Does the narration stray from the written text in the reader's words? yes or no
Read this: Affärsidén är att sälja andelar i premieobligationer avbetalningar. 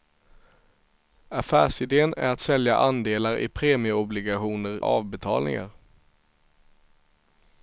no